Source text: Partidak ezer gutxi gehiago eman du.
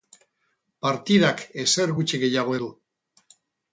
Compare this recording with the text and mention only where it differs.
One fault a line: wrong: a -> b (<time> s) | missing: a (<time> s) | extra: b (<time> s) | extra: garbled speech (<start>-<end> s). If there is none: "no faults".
missing: eman (2.5 s)